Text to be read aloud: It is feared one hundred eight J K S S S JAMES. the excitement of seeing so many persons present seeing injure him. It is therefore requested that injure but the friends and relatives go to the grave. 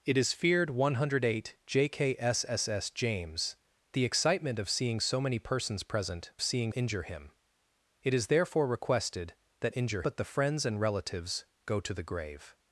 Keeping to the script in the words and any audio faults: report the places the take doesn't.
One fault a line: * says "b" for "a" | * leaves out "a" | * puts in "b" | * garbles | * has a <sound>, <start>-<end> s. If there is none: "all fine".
all fine